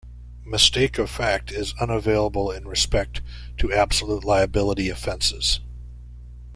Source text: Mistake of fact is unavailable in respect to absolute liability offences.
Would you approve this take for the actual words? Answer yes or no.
yes